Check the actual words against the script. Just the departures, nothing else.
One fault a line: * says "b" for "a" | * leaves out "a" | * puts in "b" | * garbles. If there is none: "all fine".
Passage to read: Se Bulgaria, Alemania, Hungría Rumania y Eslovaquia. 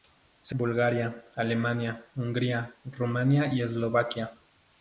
all fine